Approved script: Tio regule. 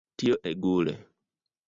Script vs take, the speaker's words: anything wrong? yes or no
no